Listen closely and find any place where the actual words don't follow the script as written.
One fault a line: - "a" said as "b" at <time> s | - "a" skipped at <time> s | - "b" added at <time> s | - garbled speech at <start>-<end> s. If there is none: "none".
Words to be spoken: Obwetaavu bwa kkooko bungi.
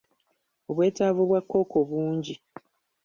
none